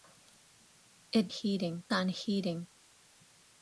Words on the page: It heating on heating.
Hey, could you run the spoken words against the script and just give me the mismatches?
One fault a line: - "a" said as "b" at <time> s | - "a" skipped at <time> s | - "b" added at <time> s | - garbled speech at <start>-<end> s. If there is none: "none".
none